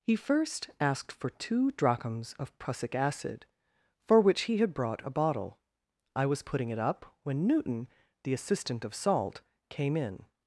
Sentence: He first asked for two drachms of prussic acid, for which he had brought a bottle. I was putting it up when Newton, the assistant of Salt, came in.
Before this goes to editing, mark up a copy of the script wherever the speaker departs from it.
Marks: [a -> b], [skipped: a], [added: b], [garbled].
He first asked for two drachms of prussic acid, for which he had brought a bottle. I was putting it up when Newton, the assistant of Salt, came in.